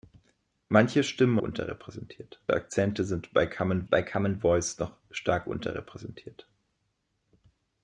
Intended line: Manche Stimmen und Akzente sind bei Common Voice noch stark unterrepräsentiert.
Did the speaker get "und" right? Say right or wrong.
wrong